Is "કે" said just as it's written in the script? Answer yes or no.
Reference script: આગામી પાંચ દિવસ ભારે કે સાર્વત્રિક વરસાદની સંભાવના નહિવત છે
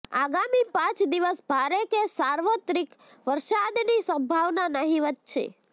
yes